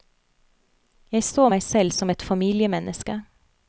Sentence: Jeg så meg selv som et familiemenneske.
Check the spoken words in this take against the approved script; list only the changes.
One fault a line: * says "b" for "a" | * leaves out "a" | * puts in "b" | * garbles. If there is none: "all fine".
all fine